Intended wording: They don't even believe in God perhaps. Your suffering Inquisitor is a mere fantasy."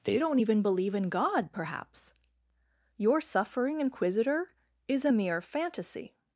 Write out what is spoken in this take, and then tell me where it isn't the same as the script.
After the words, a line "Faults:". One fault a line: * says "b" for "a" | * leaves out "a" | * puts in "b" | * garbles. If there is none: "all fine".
They don't even believe in God perhaps. Your suffering Inquisitor is a mere fantasy."
Faults:
all fine